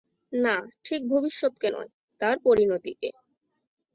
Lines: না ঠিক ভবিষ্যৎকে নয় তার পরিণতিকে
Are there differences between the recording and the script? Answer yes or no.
no